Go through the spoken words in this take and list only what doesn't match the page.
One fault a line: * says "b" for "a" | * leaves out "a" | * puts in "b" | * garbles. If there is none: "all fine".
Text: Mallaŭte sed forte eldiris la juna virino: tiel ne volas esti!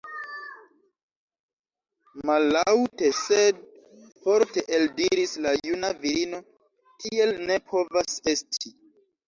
* says "povas" for "volas"